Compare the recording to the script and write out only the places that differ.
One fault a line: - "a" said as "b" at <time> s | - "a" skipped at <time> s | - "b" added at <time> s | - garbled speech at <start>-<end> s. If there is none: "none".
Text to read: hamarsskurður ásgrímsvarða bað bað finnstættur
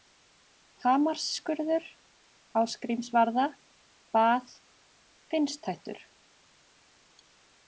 - "bað" skipped at 4.6 s